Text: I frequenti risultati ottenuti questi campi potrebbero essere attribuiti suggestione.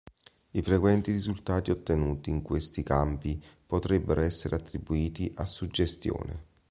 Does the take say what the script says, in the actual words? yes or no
no